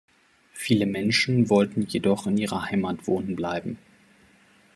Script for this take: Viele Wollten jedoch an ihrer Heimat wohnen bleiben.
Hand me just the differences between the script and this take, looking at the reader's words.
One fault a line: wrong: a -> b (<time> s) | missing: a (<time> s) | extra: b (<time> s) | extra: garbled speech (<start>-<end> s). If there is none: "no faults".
extra: Menschen (0.9 s)
wrong: an -> in (2.2 s)